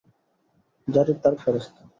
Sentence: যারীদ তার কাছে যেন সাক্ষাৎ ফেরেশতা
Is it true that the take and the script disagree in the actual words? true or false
true